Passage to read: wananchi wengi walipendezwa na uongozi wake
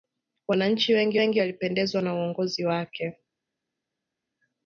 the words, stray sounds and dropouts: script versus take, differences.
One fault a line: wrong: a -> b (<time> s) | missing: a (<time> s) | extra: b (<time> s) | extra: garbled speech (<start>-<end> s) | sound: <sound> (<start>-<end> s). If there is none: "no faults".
extra: wengi (1.1 s)